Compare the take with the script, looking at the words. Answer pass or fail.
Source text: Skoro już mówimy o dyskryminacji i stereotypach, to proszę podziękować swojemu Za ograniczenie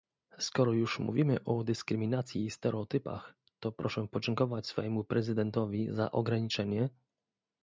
fail